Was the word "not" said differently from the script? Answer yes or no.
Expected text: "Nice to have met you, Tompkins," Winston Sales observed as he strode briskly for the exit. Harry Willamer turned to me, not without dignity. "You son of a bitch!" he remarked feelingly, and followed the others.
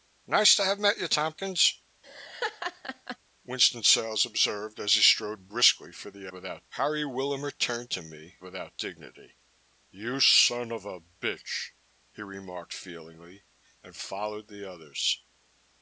yes